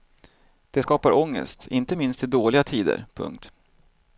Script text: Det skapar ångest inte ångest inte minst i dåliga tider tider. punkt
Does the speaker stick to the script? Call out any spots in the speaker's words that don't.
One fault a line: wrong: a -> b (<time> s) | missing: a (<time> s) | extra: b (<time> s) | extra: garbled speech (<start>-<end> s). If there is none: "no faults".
missing: ångest inte (2.0 s)
missing: tider (3.1 s)